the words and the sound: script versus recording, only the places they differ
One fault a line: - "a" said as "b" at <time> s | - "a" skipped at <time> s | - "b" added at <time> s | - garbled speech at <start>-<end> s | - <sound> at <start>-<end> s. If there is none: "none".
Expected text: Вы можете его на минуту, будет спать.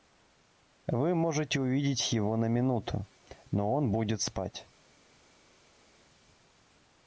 - "увидеть" added at 1.6 s
- "но он" added at 3.5 s